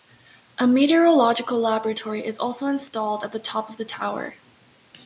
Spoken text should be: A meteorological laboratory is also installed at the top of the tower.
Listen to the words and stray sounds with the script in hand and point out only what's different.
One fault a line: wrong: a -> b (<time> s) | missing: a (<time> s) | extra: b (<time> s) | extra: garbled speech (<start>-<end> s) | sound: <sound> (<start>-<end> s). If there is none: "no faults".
no faults